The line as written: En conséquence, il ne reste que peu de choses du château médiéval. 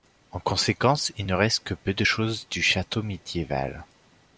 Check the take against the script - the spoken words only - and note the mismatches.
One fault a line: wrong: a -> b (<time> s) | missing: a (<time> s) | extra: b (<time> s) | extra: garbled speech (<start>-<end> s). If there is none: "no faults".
no faults